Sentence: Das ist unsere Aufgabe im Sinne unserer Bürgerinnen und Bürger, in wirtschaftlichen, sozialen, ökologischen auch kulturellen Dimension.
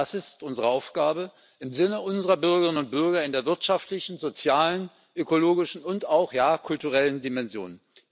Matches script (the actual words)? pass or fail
fail